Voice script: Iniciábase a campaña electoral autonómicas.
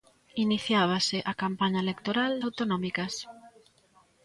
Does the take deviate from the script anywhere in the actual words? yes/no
no